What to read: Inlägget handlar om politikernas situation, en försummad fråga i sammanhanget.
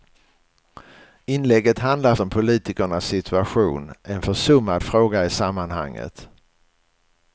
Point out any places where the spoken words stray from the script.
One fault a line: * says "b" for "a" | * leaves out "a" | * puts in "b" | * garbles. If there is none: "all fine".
all fine